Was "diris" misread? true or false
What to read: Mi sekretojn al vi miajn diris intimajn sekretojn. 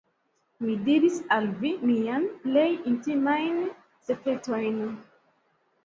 true